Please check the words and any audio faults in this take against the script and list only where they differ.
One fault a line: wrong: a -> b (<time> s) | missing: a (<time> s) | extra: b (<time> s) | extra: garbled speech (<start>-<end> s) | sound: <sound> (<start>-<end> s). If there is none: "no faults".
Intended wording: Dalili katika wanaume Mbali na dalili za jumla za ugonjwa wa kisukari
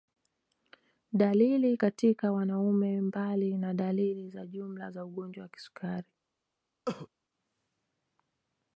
sound: cough (6.9-7.1 s)